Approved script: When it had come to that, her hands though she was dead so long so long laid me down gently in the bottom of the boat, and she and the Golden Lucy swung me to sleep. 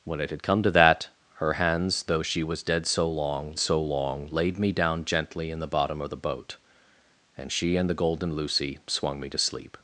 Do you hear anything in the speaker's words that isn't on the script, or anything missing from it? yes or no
no